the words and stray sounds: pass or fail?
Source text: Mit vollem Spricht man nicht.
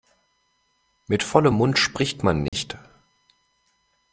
fail